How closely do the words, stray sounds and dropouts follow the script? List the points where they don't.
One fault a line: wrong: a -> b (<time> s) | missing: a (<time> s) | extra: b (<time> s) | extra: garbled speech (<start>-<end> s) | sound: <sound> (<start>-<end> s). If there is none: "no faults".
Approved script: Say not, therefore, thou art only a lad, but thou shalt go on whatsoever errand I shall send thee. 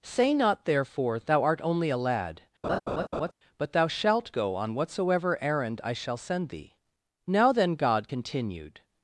sound: laugh (2.6-3.3 s)
extra: Now then God continued (7.3 s)